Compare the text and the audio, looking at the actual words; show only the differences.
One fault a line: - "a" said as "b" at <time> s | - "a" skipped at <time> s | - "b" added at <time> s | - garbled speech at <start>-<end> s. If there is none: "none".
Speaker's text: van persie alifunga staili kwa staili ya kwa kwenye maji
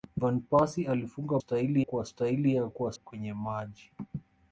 none